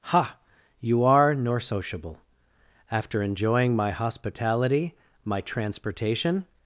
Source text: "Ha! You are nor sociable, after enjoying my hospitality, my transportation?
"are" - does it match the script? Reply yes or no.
yes